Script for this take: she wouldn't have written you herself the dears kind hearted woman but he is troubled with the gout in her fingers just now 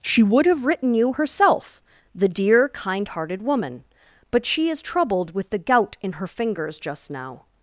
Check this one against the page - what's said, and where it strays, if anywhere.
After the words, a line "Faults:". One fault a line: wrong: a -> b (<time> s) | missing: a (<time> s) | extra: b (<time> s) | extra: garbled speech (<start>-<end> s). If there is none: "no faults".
she would have written you herself the dear kind hearted woman but she is troubled with the gout in her fingers just now
Faults:
wrong: wouldn't -> would (0.2 s)
wrong: dears -> dear (2.3 s)
wrong: he -> she (4.4 s)